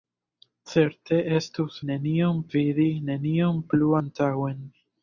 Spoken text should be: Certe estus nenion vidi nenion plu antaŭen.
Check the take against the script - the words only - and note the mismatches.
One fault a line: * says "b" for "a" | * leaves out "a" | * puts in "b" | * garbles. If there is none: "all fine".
all fine